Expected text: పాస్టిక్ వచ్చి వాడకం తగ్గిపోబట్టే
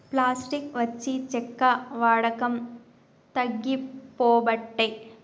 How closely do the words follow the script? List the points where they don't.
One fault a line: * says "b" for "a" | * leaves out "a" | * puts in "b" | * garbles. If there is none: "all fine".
* puts in "చెక్క"